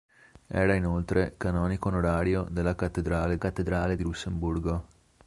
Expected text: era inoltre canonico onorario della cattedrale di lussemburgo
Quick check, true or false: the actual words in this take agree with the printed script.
false